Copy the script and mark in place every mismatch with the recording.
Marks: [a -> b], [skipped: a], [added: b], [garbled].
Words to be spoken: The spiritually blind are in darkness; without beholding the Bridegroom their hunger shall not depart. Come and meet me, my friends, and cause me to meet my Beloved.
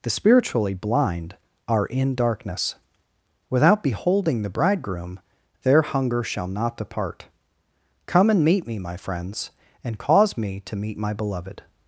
The spiritually blind are in darkness; without beholding the Bridegroom their hunger shall not depart. Come and meet me, my friends, and cause me to meet my Beloved.